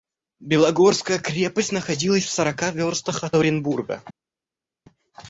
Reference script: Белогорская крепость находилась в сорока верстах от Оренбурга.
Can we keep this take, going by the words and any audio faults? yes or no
yes